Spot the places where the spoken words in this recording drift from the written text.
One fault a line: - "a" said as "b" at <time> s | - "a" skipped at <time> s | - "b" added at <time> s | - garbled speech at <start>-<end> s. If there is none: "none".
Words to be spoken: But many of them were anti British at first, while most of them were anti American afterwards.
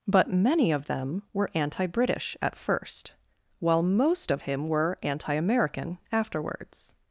- "them" said as "him" at 4.4 s